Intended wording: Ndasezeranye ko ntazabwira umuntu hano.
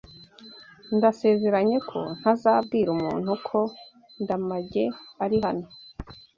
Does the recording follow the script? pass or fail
fail